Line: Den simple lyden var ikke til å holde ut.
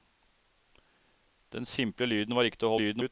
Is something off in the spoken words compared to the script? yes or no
yes